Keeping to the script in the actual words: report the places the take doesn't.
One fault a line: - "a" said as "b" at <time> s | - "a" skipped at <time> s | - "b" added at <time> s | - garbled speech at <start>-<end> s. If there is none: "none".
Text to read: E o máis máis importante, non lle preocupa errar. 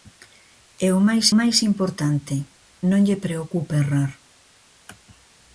none